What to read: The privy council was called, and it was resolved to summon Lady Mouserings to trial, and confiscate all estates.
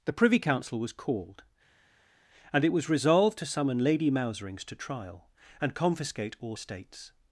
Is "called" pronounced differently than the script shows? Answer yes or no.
no